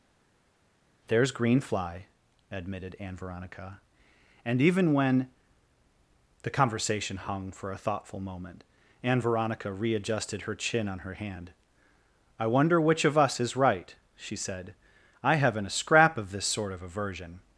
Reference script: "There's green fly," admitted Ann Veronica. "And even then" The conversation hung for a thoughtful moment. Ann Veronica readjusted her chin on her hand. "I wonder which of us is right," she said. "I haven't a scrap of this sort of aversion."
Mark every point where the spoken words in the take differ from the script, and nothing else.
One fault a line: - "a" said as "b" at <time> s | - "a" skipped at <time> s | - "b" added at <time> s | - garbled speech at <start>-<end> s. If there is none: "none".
- "then" said as "when" at 4.9 s